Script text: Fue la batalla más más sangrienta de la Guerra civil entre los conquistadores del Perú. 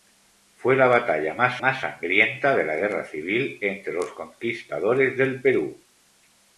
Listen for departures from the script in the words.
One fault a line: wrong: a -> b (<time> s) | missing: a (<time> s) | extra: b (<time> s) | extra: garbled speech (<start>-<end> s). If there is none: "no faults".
no faults